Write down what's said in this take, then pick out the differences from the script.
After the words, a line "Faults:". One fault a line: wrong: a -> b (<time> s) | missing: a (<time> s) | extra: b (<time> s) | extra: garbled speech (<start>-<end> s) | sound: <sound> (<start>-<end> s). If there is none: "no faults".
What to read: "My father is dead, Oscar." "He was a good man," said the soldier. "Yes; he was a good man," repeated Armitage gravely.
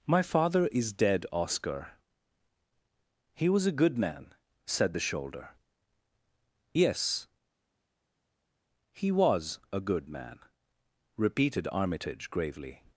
"My father is dead, Oscar." "He was a good man," said the shoulder. "Yes; he was a good man," repeated Armitage gravely.
Faults:
wrong: soldier -> shoulder (5.0 s)